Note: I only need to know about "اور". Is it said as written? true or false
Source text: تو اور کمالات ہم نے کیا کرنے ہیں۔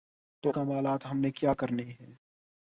false